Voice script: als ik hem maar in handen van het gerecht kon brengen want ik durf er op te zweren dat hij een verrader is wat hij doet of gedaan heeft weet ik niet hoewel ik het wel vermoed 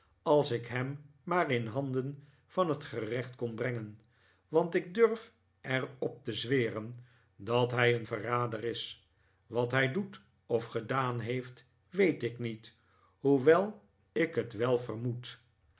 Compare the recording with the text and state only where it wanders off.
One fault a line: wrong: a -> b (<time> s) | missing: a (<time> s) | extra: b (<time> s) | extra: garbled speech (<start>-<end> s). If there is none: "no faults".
no faults